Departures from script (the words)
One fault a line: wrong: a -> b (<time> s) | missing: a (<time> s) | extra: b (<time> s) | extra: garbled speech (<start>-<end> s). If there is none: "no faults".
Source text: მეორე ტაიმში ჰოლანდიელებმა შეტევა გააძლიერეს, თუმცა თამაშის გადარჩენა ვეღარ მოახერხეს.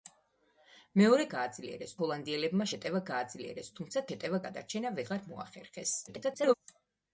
wrong: ტაიმში -> გააძლიერეს (1.3 s)
wrong: თამაშის -> შეტევა (4.1 s)
extra: garbled speech (6.1-6.5 s)